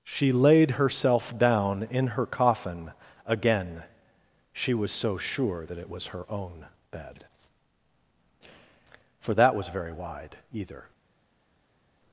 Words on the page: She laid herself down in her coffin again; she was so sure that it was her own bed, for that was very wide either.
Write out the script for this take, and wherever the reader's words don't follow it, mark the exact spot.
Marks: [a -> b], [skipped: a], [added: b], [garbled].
She laid herself down in her coffin again; she was so sure that it was her own bed, for that was very wide either.